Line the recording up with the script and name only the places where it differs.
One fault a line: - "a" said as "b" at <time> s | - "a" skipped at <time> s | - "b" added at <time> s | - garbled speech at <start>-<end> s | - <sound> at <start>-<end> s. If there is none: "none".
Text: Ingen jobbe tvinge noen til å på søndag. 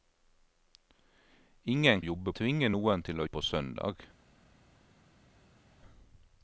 none